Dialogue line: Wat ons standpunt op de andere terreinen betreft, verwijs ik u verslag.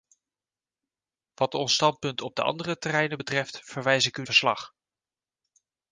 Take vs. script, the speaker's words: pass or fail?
pass